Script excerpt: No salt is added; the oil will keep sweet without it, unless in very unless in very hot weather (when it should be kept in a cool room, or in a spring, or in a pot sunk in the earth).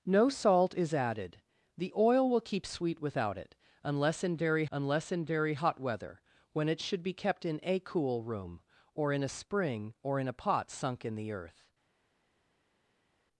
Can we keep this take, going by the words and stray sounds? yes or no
yes